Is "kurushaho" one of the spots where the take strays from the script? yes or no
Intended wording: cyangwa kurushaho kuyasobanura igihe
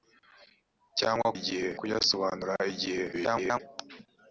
yes